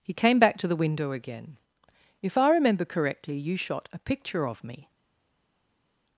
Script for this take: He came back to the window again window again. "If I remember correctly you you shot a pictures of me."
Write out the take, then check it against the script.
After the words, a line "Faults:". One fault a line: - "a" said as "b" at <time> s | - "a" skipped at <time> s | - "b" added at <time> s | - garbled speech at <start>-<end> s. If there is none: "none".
He came back to the window again. "If I remember correctly you shot a picture of me."
Faults:
- "window again" skipped at 1.6 s
- "you" skipped at 3.6 s
- "pictures" said as "picture" at 4.0 s